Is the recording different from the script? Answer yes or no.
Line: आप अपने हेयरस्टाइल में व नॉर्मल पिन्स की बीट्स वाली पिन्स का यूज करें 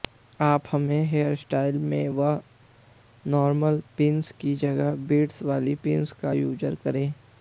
yes